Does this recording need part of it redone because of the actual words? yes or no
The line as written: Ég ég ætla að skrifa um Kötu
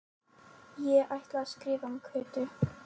yes